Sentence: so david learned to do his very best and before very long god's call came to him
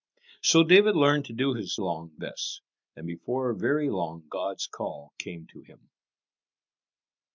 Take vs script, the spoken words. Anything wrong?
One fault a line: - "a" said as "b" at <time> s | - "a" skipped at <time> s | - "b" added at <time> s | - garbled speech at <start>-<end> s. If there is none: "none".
- "very" said as "long" at 1.8 s